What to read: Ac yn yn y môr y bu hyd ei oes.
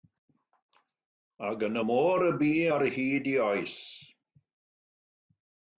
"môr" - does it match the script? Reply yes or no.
yes